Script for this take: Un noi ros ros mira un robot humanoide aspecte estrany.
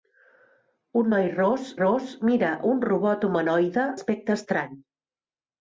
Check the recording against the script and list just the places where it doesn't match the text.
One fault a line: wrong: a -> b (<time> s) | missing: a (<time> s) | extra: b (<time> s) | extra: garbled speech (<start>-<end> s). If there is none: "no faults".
no faults